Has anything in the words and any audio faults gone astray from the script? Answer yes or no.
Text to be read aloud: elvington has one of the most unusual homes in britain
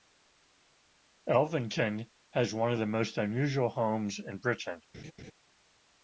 yes